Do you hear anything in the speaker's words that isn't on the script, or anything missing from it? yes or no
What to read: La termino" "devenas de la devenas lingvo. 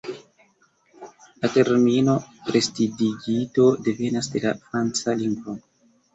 yes